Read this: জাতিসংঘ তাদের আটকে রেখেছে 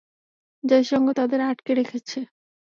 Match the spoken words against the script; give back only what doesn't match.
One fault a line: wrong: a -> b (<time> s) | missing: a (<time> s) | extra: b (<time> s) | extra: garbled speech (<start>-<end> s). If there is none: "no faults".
no faults